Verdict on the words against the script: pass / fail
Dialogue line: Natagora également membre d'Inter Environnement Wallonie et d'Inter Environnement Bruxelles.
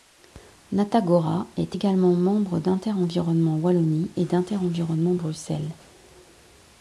fail